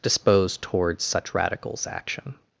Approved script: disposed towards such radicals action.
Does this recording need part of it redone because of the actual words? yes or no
no